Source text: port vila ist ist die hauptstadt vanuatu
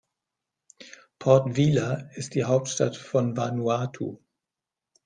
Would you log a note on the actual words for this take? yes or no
yes